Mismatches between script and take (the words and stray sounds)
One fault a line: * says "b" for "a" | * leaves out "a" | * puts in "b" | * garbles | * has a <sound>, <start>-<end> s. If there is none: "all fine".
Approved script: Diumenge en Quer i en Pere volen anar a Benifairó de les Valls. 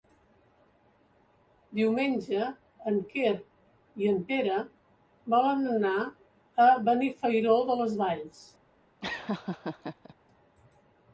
* has a laugh, 9.0-10.1 s